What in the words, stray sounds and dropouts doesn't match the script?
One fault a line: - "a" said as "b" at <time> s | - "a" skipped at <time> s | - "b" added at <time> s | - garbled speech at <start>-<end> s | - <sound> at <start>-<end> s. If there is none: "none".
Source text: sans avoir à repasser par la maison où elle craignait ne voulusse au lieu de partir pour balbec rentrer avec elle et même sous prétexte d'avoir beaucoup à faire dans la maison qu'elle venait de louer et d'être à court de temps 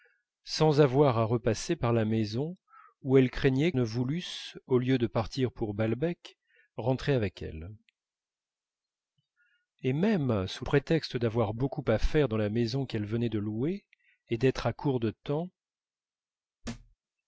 - thud at 16.6-17.0 s